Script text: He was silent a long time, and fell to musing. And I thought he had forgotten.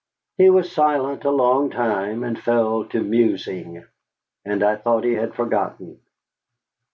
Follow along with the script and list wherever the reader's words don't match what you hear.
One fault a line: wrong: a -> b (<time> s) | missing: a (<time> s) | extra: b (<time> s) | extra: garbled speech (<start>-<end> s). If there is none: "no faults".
no faults